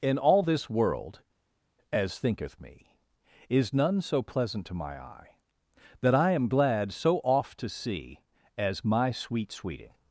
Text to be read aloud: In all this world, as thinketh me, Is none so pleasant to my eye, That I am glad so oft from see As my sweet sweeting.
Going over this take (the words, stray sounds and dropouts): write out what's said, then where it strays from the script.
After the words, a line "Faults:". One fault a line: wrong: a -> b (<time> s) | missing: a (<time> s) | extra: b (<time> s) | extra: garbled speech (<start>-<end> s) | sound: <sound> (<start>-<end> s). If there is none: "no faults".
In all this world, as thinketh me, Is none so pleasant to my eye, That I am glad so oft to see As my sweet sweeting.
Faults:
wrong: from -> to (7.6 s)